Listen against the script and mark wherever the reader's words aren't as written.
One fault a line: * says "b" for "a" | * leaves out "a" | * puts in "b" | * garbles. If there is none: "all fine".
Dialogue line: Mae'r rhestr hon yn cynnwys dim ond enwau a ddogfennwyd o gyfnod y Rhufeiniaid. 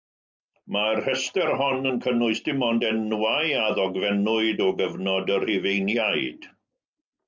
all fine